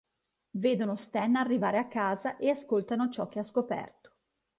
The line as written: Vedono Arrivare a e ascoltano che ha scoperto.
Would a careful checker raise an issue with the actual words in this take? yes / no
yes